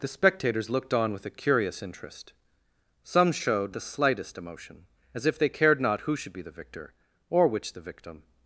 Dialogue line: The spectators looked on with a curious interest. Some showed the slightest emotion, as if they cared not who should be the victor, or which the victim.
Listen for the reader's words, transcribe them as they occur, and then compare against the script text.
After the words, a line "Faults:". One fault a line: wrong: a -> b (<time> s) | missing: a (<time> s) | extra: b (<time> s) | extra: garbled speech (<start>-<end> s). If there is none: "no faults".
The spectators looked on with a curious interest. Some showed the slightest emotion, as if they cared not who should be the victor, or which the victim.
Faults:
no faults